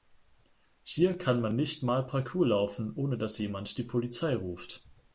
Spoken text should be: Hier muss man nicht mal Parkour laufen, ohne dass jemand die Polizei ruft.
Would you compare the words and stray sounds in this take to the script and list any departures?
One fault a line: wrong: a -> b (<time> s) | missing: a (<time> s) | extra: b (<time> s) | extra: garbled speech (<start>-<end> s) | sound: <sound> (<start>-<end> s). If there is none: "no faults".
wrong: muss -> kann (1.1 s)